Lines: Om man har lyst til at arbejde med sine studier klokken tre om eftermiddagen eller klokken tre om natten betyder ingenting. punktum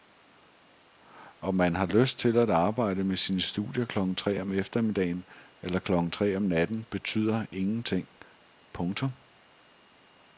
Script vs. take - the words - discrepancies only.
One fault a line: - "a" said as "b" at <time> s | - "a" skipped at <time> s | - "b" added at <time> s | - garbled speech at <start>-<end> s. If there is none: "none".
none